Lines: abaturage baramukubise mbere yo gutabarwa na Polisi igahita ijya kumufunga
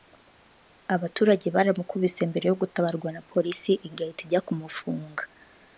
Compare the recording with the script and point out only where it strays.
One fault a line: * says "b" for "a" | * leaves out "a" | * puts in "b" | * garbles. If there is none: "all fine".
all fine